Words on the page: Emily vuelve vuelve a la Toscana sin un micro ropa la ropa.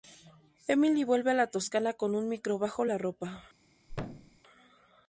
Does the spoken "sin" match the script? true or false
false